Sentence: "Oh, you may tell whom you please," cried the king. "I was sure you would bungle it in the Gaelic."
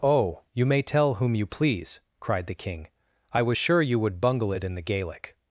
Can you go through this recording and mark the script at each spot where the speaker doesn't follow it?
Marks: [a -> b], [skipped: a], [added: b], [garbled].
"Oh, you may tell whom you please," cried the king. "I was sure you would bungle it in the Gaelic."